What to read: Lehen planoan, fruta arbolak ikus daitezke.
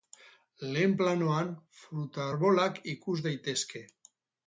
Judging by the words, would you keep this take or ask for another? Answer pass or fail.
pass